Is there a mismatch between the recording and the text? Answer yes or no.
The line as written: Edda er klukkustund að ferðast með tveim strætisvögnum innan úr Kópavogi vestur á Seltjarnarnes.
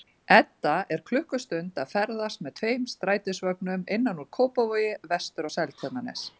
no